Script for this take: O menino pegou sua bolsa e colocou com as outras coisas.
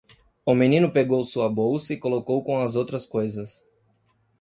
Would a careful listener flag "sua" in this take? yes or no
no